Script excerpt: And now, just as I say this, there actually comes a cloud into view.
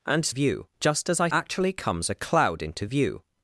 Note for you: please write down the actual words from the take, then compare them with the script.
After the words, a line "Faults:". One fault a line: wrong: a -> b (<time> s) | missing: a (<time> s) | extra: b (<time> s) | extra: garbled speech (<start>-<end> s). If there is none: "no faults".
And view, just as I actually comes a cloud into view.
Faults:
wrong: now -> view (0.3 s)
missing: say this there (1.3 s)